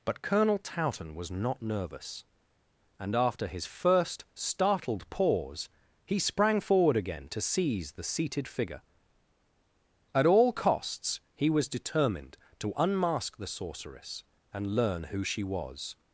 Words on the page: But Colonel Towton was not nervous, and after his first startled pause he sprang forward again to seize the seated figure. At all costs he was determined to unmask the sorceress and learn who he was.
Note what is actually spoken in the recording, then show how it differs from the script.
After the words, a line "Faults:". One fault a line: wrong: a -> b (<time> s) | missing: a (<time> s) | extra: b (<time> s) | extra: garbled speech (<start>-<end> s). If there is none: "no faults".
But Colonel Towton was not nervous, and after his first startled pause he sprang forward again to seize the seated figure. At all costs he was determined to unmask the sorceress and learn who she was.
Faults:
wrong: he -> she (15.2 s)